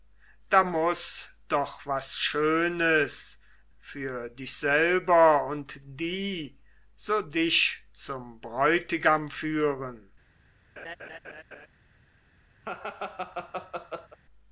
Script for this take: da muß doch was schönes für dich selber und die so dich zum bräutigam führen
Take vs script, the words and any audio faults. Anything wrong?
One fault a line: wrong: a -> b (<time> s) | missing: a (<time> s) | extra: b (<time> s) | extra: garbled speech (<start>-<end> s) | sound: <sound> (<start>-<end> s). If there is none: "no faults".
sound: laugh (10.8-11.7 s)
sound: laugh (12.6-14.2 s)